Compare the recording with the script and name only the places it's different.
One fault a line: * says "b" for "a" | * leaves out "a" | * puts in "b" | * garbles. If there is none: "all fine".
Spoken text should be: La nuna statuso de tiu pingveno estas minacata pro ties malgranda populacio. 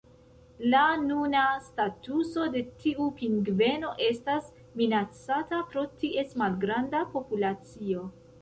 all fine